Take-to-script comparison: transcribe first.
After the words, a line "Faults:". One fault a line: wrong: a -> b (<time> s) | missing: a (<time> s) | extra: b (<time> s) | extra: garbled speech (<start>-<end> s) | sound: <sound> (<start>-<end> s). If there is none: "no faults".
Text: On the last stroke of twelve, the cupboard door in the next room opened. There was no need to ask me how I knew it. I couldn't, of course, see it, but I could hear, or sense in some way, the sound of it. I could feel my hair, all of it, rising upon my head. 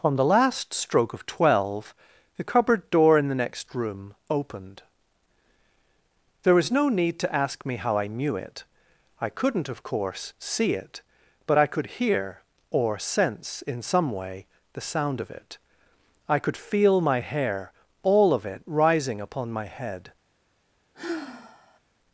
On the last stroke of twelve, the cupboard door in the next room opened. There was no need to ask me how I knew it. I couldn't, of course, see it, but I could hear, or sense in some way, the sound of it. I could feel my hair, all of it, rising upon my head.
Faults:
sound: sigh (20.9-21.8 s)